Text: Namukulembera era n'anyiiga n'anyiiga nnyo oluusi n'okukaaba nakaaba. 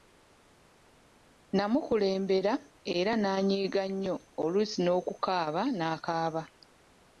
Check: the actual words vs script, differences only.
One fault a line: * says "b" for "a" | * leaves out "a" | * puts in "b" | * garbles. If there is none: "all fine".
* leaves out "n'anyiiga"